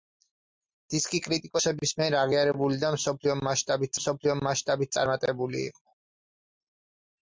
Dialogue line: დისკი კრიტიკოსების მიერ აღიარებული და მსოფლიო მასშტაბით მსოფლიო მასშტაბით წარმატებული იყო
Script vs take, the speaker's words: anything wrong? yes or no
no